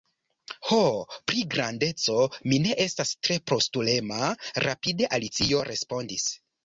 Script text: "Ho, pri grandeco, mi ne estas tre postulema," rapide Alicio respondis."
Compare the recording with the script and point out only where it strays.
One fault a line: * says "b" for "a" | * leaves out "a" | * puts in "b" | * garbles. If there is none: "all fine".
all fine